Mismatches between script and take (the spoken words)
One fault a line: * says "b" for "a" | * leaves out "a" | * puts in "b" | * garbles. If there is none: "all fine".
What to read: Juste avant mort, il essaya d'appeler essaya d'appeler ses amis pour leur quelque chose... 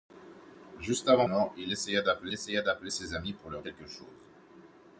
all fine